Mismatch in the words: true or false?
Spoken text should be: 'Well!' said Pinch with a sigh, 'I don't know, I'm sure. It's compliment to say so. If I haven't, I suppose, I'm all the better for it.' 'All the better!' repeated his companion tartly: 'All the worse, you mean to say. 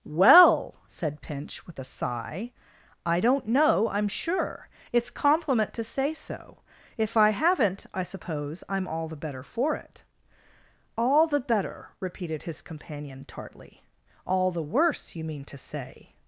false